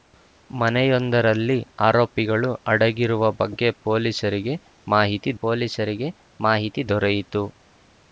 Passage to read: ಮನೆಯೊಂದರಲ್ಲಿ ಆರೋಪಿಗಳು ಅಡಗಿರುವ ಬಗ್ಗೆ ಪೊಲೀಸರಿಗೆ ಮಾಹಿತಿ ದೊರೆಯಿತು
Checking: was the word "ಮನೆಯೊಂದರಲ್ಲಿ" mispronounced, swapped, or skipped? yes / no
no